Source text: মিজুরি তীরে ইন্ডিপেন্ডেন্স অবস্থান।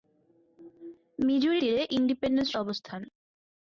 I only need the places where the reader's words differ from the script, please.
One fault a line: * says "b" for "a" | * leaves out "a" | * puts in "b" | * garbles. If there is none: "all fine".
all fine